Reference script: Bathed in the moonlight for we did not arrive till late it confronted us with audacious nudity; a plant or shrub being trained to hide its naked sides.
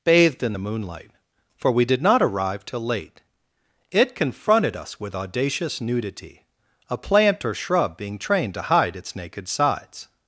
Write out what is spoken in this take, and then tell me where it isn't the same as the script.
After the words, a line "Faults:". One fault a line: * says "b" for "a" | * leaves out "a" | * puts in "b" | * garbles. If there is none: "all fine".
Bathed in the moonlight for we did not arrive till late it confronted us with audacious nudity; a plant or shrub being trained to hide its naked sides.
Faults:
all fine